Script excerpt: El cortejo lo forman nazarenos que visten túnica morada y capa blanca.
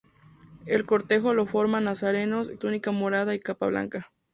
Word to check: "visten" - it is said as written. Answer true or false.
false